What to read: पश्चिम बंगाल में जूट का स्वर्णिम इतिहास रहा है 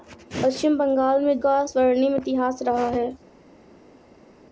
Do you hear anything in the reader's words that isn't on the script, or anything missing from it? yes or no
yes